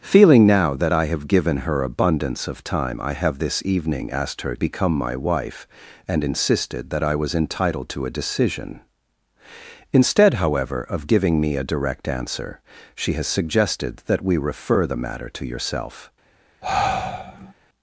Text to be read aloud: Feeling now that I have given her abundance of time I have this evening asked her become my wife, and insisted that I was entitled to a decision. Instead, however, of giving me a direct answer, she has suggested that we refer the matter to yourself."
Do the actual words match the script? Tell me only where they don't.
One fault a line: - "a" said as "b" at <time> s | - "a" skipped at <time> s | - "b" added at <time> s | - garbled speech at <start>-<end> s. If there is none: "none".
none